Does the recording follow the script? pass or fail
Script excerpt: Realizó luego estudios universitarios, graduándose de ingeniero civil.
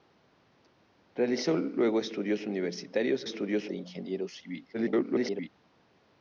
fail